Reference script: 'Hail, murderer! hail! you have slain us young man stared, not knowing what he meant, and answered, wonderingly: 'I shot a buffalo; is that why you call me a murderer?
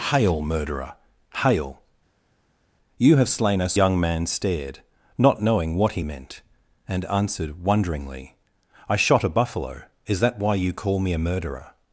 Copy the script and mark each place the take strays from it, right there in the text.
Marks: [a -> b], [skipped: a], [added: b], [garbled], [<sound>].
'Hail, murderer! hail! you have slain us young man stared, not knowing what he meant, and answered, wonderingly: 'I shot a buffalo; is that why you call me a murderer?